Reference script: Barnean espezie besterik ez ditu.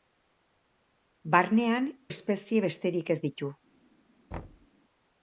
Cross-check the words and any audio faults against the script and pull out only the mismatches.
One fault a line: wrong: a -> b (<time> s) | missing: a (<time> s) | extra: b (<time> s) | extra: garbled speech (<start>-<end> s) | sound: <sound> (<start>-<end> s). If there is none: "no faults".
sound: thud (4.3-4.7 s)